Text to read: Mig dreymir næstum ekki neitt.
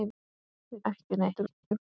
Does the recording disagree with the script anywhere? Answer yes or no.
yes